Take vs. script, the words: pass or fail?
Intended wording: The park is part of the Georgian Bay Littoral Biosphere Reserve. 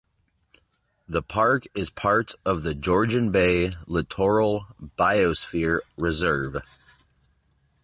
pass